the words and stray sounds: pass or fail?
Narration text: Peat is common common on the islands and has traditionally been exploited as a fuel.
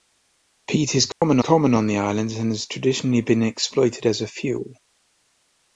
fail